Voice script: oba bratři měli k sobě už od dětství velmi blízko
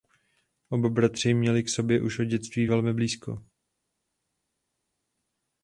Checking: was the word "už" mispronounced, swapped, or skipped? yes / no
no